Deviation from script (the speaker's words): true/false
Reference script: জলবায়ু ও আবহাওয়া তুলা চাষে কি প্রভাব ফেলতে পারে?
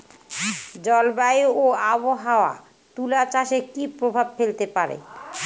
false